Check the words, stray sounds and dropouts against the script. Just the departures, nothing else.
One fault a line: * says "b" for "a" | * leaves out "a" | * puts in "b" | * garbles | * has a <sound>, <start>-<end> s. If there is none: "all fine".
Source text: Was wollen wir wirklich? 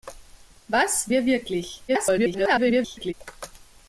* leaves out "wollen"
* garbles